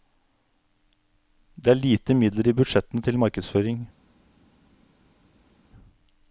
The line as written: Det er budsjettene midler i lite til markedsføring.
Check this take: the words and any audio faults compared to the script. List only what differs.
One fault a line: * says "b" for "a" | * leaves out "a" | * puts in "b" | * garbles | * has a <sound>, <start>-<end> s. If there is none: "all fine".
* says "lite" for "budsjettene"
* says "budsjettene" for "lite"